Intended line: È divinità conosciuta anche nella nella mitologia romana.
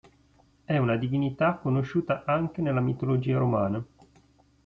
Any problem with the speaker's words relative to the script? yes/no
yes